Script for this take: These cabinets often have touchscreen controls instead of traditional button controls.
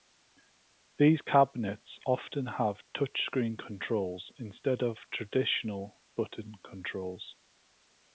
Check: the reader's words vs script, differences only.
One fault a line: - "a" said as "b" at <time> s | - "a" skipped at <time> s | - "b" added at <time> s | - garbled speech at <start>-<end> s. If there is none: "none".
none